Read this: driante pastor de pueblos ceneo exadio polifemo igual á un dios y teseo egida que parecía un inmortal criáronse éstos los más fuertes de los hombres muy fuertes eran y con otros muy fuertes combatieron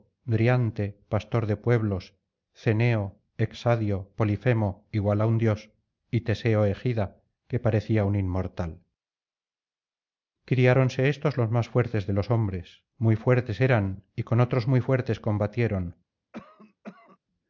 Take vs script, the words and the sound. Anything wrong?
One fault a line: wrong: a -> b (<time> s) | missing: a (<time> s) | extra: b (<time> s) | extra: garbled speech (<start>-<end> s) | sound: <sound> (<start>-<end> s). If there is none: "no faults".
sound: cough (16.3-17.2 s)